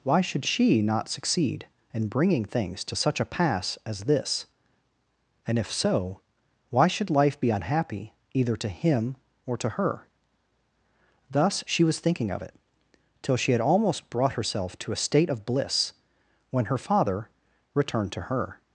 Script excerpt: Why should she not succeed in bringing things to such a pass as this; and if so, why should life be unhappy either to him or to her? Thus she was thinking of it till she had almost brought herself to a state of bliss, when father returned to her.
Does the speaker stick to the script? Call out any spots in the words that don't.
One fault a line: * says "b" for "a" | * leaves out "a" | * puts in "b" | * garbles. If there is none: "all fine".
* puts in "her"